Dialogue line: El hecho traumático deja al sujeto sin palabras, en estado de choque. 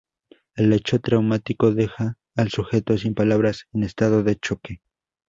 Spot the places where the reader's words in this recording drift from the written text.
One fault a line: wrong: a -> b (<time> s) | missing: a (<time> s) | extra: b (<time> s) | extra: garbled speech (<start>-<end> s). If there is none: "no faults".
no faults